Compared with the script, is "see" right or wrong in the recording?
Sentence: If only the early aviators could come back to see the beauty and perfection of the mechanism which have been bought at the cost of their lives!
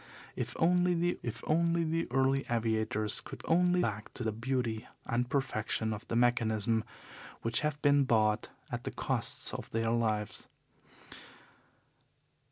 wrong